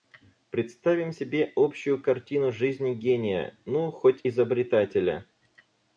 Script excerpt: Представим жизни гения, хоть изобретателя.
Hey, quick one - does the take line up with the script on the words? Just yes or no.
no